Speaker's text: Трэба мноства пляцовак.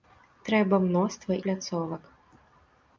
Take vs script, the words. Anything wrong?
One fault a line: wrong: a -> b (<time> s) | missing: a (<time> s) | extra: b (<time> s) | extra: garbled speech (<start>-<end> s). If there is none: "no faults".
no faults